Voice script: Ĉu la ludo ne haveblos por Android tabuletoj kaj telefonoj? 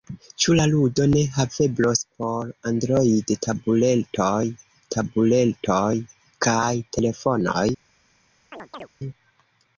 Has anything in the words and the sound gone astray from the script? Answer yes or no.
yes